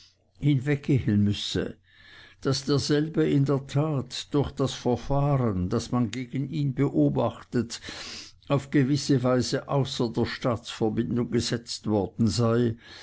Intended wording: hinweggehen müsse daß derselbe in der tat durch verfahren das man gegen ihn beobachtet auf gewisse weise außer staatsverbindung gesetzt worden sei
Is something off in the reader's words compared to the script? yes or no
yes